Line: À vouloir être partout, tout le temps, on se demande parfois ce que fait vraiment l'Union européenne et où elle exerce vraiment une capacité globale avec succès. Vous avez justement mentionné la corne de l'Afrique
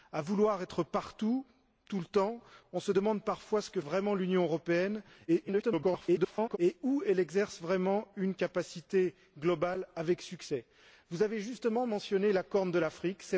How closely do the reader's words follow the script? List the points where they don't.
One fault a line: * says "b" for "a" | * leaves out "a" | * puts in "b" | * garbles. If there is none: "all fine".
* leaves out "fait"
* garbles